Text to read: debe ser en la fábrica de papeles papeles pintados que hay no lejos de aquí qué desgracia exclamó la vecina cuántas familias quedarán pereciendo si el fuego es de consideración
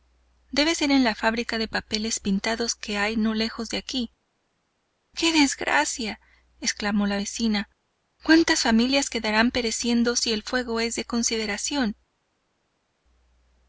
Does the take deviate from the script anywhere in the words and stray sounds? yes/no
yes